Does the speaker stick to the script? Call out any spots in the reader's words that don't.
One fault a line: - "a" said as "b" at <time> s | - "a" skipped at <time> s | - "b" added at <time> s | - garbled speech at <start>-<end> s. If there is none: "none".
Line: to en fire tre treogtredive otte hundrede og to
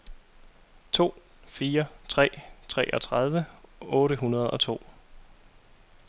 - "en" skipped at 1.1 s